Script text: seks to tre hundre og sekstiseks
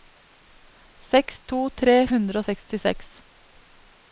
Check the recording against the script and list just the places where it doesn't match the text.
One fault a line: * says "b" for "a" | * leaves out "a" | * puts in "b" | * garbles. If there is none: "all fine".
all fine